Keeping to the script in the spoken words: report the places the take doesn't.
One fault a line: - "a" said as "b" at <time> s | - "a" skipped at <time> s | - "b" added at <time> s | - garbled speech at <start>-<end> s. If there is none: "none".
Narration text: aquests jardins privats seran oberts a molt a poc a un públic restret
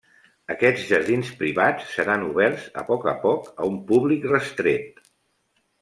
- "molt" said as "poc" at 2.9 s